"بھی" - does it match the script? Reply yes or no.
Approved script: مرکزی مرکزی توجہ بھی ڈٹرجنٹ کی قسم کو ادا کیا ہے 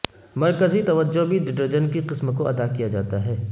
yes